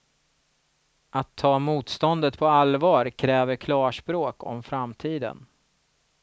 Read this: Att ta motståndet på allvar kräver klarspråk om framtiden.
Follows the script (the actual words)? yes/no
yes